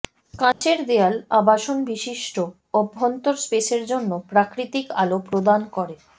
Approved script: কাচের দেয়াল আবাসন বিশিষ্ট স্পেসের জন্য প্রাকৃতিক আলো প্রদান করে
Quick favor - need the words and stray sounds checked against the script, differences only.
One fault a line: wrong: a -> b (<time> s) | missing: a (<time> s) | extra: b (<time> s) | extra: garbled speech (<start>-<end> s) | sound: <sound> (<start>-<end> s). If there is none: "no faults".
sound: dropout (0.5-0.6 s)
extra: অভ্যন্তর (2.7 s)